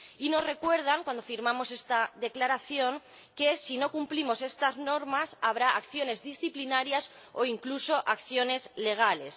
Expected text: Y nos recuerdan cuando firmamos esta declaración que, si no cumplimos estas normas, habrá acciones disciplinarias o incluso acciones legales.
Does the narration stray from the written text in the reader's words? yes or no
no